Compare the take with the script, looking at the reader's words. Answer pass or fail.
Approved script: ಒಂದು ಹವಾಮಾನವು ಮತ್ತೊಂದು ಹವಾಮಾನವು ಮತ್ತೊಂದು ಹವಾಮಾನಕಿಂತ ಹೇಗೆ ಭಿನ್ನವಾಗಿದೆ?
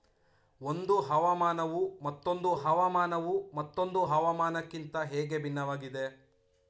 pass